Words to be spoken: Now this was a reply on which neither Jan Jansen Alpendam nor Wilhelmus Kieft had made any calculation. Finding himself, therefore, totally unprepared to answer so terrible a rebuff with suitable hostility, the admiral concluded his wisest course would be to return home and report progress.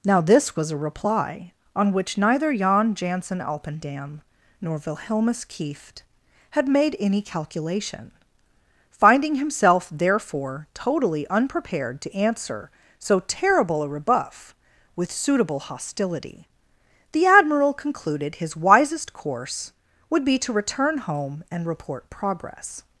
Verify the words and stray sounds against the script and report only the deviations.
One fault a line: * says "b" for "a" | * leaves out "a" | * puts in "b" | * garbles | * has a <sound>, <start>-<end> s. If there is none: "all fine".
all fine